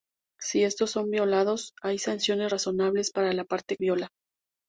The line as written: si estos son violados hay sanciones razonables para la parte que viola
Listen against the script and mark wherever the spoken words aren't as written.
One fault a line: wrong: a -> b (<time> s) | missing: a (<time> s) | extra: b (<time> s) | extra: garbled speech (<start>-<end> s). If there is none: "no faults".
missing: que (3.8 s)